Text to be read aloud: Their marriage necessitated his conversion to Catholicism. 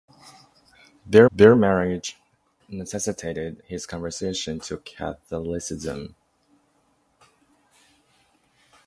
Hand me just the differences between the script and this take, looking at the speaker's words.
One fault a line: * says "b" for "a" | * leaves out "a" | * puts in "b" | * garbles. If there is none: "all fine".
* puts in "their"